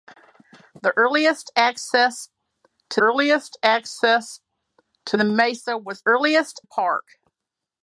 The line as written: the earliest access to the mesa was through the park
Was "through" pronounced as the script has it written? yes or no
no